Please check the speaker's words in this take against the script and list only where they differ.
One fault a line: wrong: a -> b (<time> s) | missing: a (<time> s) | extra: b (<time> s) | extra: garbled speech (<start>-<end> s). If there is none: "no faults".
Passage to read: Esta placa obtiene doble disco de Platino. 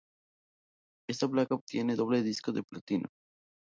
no faults